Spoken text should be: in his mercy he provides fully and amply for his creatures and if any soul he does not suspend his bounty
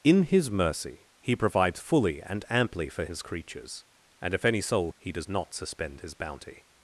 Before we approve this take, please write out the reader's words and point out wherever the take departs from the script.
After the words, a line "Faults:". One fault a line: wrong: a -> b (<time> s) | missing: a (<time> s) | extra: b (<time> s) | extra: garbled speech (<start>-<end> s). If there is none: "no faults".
in his mercy he provides fully and amply for his creatures and if any soul he does not suspend his bounty
Faults:
no faults